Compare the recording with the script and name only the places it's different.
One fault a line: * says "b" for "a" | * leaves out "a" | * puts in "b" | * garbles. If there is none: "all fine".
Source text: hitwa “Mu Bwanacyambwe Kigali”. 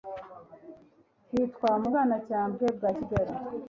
* puts in "bwa"